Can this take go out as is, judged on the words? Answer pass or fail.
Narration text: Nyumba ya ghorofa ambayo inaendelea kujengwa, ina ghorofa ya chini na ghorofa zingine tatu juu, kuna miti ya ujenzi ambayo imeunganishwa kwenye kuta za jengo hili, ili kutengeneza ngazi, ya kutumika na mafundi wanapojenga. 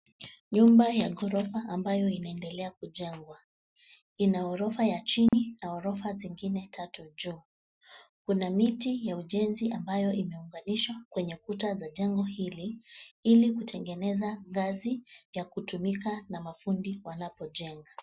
pass